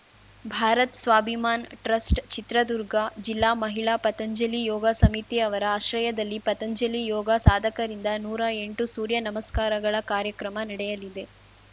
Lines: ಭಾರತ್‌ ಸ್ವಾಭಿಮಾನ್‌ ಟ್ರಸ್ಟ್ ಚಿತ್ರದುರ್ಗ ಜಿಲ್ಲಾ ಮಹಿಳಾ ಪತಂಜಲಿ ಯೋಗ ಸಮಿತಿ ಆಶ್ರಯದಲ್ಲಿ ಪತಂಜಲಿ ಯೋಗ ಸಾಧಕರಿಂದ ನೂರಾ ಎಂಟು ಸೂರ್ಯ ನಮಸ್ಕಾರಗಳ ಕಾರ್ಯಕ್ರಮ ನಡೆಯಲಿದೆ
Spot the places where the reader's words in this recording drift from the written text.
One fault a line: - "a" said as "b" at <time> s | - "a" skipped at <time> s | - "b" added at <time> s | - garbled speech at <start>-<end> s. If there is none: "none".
- "ಅವರ" added at 5.4 s